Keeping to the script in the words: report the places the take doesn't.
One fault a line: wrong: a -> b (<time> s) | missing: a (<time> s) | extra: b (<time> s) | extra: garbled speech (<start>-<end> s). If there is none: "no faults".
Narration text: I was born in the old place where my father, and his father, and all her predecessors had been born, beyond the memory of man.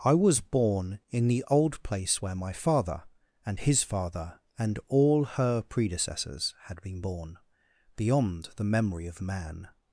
no faults